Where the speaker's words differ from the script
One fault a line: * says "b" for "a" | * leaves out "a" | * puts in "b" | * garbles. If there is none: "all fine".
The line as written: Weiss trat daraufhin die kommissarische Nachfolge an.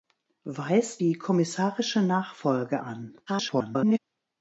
* leaves out "trat daraufhin"
* garbles